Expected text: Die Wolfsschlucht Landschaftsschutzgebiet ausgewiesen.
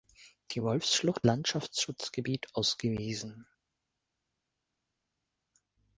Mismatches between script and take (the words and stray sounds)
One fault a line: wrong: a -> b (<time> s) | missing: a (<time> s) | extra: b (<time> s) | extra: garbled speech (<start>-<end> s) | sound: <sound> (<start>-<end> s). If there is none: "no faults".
no faults